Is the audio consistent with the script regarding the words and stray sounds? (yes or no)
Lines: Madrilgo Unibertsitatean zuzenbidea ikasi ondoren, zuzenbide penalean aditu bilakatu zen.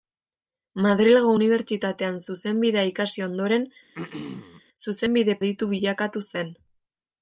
no